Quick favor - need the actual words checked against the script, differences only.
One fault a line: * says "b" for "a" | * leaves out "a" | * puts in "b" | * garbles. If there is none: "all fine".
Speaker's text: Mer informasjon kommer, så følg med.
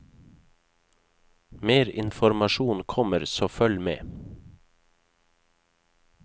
all fine